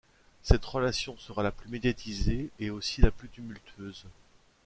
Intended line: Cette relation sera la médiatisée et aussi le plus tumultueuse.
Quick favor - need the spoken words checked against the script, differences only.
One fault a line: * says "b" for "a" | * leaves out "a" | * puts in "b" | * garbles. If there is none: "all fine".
* puts in "plus"
* says "la" for "le"